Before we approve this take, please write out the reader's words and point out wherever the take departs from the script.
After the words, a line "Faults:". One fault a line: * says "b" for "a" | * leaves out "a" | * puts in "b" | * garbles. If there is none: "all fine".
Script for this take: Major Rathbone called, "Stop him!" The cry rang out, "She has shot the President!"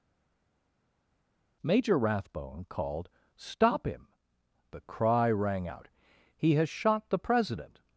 Major Rathbone called, "Stop him!" The cry rang out, "He has shot the President!"
Faults:
* says "He" for "She"